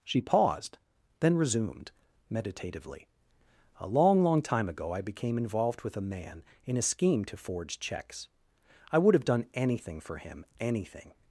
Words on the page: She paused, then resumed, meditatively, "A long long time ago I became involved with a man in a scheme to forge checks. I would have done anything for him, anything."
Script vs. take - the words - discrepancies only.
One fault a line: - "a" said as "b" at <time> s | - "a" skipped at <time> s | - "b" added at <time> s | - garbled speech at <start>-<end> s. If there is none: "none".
none